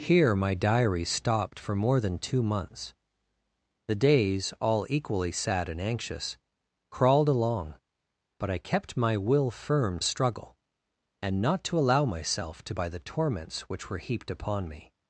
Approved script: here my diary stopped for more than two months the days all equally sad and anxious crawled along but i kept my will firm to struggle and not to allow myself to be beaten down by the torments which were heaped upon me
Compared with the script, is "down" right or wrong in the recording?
wrong